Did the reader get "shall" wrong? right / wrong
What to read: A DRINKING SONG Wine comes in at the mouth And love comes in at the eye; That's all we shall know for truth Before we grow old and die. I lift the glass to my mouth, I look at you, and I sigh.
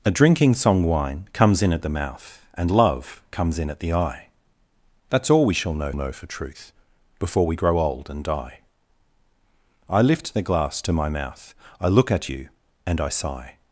right